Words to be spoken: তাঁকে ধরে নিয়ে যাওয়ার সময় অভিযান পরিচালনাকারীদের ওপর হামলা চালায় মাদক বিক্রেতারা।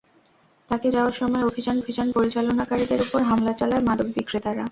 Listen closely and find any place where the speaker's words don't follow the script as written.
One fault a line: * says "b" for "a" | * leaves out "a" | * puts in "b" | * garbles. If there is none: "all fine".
* leaves out "ধরে নিয়ে"
* puts in "অভিযান"